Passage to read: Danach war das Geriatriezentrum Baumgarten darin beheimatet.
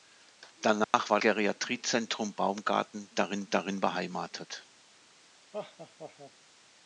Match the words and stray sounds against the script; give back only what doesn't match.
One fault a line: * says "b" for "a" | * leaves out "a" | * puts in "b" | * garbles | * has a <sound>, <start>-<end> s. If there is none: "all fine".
* has a dropout, 0.8-0.9 s
* leaves out "das"
* puts in "darin"
* has a laugh, 5.5-6.3 s